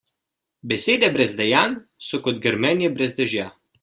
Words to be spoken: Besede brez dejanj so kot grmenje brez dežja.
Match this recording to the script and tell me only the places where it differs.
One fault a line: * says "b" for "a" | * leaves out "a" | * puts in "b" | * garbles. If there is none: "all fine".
all fine